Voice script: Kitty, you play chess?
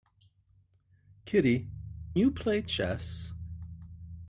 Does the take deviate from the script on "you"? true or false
false